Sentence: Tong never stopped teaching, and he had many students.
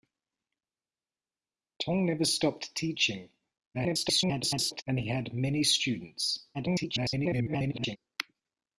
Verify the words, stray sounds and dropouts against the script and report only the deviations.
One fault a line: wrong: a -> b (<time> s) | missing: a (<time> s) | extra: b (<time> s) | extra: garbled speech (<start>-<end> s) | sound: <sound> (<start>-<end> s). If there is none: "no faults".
extra: garbled speech (3.7-4.8 s)
extra: garbled speech (6.5-8.0 s)